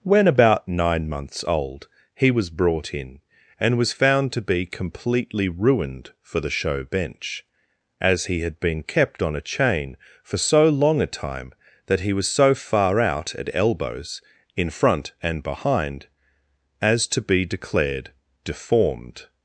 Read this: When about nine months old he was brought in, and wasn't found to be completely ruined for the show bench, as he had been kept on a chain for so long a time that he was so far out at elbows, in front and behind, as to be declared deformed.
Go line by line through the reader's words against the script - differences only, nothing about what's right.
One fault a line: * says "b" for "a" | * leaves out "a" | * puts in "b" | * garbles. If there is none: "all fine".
* says "was" for "wasn't"